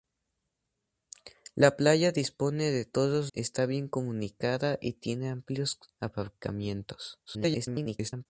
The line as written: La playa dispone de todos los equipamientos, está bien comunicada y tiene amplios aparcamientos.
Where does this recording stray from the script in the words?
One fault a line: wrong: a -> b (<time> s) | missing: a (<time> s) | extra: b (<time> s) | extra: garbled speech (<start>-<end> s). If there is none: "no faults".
missing: los equipamientos (3.3 s)
extra: garbled speech (7.3-8.3 s)